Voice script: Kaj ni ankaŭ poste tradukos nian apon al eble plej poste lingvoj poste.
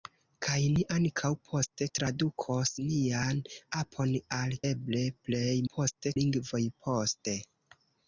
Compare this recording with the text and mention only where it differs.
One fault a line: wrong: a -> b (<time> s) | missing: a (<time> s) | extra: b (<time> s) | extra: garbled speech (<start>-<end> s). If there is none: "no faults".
no faults